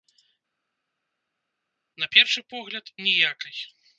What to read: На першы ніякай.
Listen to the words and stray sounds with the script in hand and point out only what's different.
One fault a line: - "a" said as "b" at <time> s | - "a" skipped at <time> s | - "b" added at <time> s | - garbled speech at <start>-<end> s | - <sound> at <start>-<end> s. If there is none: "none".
- "погляд" added at 2.5 s